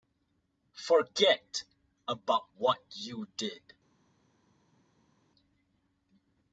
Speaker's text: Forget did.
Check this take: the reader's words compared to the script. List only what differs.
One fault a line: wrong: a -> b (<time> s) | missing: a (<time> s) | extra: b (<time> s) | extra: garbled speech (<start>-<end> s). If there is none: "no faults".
extra: about what you (2.1 s)